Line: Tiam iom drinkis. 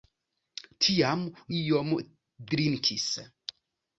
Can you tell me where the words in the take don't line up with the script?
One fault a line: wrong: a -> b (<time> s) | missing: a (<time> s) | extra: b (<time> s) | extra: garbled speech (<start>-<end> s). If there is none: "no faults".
no faults